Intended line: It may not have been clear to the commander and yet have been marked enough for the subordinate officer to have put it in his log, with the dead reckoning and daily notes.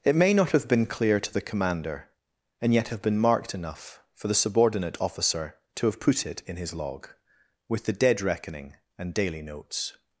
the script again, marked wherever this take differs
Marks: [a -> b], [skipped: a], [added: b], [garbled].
It may not have been clear to the commander and yet have been marked enough for the subordinate officer to have put it in his log, with the dead reckoning and daily notes.